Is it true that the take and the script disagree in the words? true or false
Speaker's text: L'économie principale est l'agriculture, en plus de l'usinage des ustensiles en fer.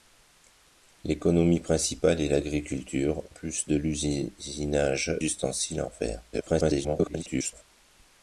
true